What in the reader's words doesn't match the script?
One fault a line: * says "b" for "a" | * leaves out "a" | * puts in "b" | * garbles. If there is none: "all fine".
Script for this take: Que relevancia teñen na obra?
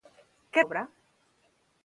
* leaves out "relevancia teñen na"